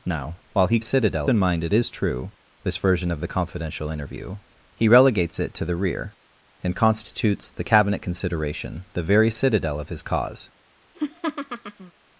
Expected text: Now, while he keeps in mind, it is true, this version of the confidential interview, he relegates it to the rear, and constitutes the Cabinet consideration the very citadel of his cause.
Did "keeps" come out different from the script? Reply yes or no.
yes